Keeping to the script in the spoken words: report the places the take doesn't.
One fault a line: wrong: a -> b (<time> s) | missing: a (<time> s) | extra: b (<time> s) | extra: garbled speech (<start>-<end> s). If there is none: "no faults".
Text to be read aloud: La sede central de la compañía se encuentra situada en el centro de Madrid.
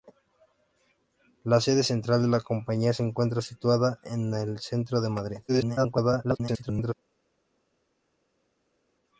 extra: garbled speech (5.5-6.9 s)